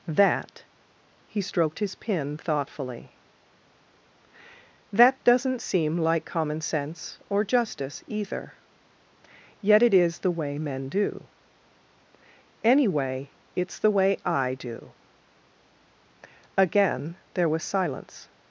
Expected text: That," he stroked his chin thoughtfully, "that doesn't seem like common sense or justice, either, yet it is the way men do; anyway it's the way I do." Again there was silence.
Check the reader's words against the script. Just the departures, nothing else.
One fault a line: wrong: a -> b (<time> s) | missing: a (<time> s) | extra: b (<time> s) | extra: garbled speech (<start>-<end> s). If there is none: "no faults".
wrong: chin -> pin (1.9 s)